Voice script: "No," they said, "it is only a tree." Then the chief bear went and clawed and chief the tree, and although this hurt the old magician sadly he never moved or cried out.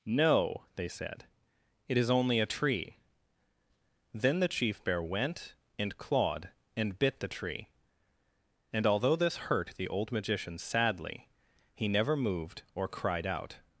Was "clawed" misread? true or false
false